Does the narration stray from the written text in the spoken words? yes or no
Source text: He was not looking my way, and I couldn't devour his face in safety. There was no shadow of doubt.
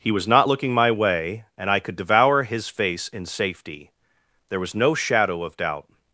yes